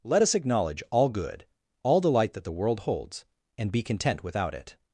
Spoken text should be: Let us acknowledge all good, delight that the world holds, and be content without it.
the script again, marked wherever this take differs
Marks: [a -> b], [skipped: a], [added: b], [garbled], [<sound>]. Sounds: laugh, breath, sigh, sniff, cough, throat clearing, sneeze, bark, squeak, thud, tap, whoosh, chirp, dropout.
Let us acknowledge all good, [added: all] delight that the world holds, and be content without it.